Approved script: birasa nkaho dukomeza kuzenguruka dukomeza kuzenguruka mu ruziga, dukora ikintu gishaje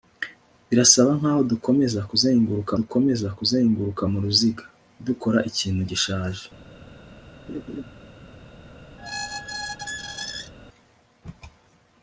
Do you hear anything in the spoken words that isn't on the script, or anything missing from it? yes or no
no